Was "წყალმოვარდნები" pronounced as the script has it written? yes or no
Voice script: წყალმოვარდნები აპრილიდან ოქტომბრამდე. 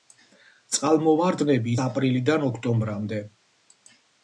yes